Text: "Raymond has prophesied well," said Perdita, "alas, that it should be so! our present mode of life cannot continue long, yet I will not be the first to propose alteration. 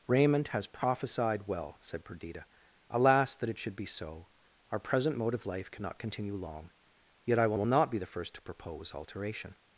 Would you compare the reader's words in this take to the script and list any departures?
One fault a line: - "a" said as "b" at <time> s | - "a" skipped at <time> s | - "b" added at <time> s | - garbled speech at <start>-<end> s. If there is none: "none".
- "will" added at 7.5 s